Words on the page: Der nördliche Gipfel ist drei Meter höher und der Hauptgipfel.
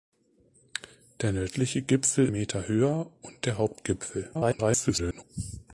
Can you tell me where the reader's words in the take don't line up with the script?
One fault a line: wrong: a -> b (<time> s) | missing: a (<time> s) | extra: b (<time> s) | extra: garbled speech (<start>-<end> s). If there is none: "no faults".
missing: ist drei (2.3 s)
extra: garbled speech (4.3-5.2 s)